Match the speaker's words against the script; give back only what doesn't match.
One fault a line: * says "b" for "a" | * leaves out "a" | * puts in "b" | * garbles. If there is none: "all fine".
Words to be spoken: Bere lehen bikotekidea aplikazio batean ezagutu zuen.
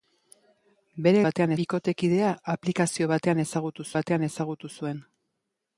* says "batean" for "lehen"
* puts in "batean ezagutu"